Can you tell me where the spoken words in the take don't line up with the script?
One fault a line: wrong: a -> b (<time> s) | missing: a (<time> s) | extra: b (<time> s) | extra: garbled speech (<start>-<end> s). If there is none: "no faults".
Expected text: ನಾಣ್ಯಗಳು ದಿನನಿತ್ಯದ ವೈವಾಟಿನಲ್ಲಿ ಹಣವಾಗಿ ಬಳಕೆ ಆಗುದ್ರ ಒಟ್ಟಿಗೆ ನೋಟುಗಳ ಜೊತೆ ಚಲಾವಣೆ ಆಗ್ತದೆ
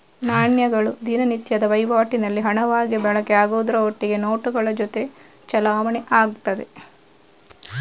no faults